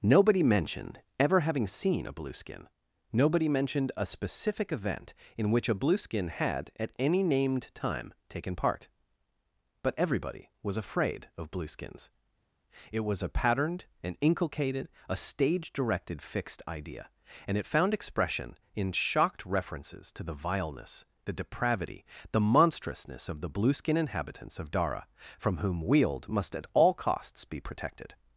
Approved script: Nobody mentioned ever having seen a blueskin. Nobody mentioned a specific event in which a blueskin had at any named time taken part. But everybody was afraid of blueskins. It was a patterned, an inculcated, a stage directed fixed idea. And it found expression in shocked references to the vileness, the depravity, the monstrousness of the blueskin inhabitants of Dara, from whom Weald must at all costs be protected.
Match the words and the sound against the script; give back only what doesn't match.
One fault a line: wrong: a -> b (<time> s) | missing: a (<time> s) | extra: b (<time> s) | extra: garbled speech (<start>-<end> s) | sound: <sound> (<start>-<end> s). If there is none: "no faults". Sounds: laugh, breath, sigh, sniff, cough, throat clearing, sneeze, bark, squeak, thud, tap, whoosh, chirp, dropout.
no faults